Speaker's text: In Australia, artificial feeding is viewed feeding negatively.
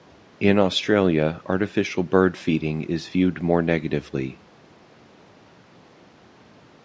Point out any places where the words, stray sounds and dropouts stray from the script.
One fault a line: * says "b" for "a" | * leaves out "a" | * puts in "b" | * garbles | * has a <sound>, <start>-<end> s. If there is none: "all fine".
* puts in "bird"
* says "more" for "feeding"